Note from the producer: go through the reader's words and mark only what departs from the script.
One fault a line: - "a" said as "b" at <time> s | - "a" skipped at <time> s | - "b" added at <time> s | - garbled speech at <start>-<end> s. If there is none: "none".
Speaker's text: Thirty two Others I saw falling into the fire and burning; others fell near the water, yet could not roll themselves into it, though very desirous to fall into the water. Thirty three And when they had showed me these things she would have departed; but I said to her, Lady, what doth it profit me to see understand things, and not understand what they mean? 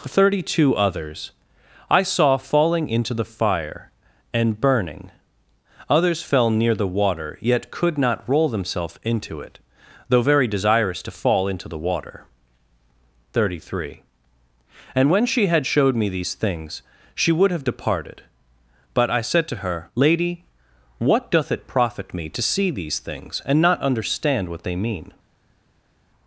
- "they" said as "she" at 15.3 s
- "understand" said as "these" at 22.7 s